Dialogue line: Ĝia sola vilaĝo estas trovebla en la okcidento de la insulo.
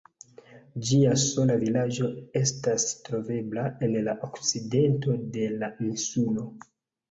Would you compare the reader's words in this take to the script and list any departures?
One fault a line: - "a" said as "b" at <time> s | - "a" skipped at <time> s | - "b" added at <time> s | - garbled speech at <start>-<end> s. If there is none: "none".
none